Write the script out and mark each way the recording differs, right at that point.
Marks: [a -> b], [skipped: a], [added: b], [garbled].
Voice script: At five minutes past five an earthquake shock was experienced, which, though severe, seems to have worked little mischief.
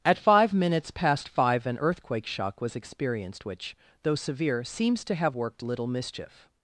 At five minutes past five an earthquake shock was experienced, which, though severe, seems to have worked little mischief.